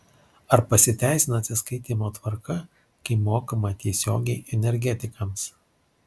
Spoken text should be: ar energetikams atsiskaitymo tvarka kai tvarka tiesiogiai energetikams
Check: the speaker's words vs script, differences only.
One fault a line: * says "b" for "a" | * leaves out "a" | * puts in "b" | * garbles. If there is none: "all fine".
* says "pasiteisina" for "energetikams"
* says "mokama" for "tvarka"